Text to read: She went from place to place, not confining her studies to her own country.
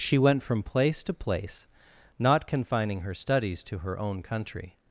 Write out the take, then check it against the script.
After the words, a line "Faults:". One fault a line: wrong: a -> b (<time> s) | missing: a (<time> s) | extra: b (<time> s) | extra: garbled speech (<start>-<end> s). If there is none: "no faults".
She went from place to place, not confining her studies to her own country.
Faults:
no faults